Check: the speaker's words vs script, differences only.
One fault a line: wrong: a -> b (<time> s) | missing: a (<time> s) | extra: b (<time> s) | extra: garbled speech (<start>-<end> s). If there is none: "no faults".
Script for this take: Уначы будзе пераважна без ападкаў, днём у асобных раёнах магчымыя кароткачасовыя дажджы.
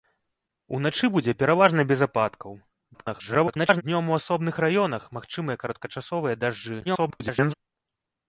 extra: garbled speech (2.9-3.8 s)
extra: garbled speech (6.8-7.5 s)